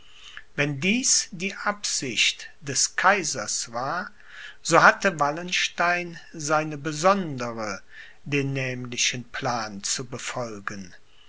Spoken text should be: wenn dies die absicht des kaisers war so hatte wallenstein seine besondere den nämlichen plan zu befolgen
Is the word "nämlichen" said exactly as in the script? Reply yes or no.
yes